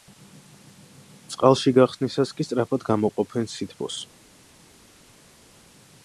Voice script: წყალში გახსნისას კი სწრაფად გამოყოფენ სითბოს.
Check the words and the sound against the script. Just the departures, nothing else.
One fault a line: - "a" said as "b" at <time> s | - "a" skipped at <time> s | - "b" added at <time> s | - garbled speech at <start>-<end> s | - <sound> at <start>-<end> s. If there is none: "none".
none